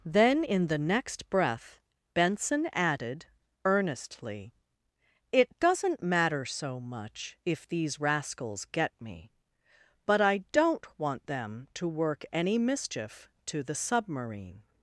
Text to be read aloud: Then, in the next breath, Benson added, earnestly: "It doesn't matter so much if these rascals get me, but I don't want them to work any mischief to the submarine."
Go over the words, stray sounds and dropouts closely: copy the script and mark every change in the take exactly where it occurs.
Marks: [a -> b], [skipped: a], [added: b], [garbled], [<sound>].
Then, in the next breath, Benson added, earnestly: "It doesn't matter so much if these rascals get me, but I don't want them to work any mischief to the submarine."